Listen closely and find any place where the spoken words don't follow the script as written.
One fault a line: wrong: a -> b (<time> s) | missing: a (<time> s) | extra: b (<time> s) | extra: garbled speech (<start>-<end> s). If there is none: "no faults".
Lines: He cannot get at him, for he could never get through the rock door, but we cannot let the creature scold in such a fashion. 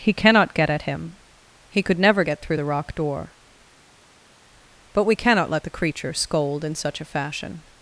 missing: for (1.2 s)